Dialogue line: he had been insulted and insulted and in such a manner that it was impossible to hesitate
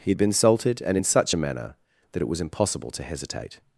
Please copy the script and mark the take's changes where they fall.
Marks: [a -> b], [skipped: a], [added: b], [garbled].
he had been insulted and [skipped: insulted and] in such a manner that it was impossible to hesitate